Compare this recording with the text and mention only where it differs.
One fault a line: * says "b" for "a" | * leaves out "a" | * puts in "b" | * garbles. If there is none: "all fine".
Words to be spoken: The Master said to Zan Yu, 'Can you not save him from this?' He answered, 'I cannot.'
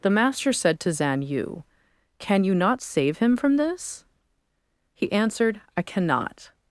all fine